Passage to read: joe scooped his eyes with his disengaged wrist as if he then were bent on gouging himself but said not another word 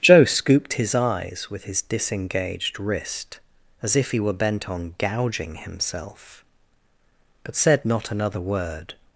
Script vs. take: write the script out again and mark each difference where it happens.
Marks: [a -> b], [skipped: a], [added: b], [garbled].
joe scooped his eyes with his disengaged wrist as if he [skipped: then] were bent on gouging himself but said not another word